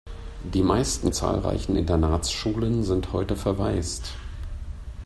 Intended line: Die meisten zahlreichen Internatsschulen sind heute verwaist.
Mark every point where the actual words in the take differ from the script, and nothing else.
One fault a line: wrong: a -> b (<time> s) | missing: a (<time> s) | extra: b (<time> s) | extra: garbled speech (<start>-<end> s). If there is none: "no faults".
no faults